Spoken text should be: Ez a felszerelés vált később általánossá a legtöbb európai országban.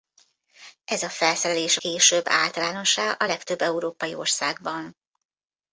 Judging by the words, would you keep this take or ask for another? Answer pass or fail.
fail